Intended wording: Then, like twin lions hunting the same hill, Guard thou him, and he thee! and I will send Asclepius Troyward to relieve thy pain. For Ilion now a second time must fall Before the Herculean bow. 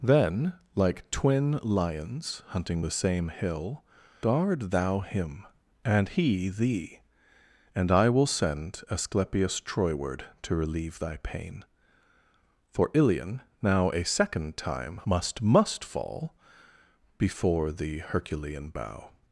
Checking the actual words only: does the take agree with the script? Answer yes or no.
no